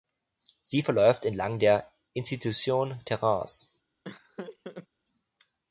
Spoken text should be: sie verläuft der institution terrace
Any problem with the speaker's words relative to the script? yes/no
yes